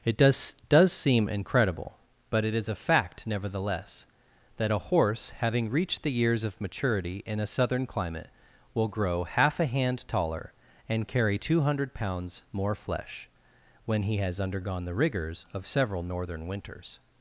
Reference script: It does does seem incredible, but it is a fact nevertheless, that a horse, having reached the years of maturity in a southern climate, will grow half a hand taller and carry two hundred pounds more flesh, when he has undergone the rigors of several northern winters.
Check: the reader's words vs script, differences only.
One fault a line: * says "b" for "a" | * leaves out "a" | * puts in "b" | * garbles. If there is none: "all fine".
all fine